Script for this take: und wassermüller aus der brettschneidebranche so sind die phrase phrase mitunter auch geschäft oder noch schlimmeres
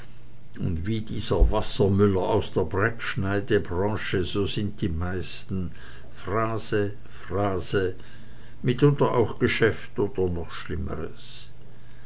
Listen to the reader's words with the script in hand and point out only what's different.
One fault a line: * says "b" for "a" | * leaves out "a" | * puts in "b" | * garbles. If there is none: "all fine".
* puts in "wie dieser"
* puts in "meisten"